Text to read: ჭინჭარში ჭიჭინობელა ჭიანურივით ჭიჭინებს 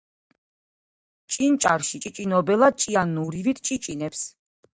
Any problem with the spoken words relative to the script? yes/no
no